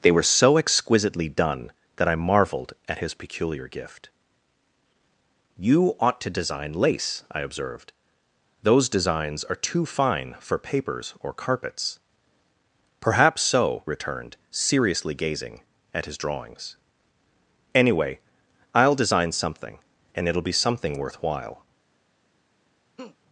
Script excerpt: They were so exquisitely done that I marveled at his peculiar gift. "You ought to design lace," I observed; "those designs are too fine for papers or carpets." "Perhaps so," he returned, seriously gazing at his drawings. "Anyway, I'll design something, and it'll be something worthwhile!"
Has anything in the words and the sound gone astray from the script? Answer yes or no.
yes